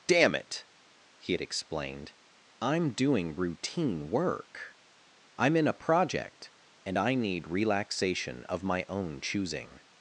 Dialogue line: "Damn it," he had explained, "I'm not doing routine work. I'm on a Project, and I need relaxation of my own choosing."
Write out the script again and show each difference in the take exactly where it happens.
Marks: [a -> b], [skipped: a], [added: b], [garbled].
"Damn it," he had explained, "I'm [skipped: not] doing routine work. I'm [on -> in] a Project, and I need relaxation of my own choosing."